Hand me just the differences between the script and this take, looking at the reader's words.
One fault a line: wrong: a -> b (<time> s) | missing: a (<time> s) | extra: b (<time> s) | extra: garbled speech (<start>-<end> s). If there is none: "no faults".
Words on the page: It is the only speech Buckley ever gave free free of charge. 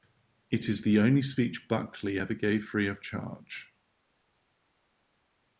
missing: free (2.9 s)